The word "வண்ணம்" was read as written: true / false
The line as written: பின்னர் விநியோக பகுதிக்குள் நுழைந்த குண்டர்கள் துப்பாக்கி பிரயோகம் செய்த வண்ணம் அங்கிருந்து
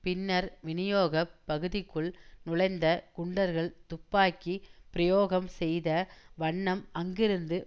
true